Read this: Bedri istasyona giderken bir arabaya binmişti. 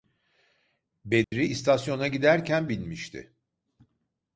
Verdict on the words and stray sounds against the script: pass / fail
fail